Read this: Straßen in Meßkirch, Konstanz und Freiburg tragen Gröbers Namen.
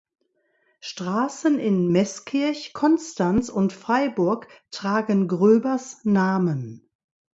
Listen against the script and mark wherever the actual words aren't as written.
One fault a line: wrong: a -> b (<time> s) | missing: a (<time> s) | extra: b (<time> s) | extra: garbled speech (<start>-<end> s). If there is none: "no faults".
no faults